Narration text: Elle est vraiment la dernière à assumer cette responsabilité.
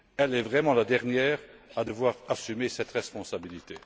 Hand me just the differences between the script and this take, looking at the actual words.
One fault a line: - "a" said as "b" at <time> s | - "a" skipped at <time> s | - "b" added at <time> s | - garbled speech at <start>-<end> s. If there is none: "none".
- "devoir" added at 1.8 s